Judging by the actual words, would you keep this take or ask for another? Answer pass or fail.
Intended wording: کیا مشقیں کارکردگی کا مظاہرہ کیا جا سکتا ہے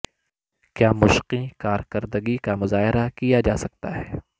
pass